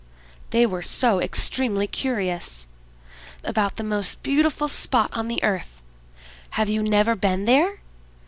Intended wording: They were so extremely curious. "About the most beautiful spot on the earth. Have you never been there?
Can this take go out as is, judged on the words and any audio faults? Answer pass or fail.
pass